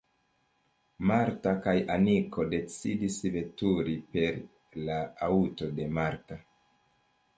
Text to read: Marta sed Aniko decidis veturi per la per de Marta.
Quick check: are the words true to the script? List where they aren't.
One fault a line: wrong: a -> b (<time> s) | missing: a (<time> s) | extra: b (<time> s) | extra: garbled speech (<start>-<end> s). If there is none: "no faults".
wrong: sed -> kaj (1.6 s)
wrong: per -> aŭto (5.3 s)